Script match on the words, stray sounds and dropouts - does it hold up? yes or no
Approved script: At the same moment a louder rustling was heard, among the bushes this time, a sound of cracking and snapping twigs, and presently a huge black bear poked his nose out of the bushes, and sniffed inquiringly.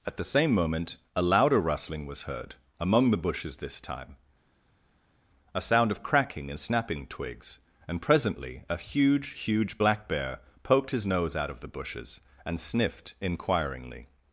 no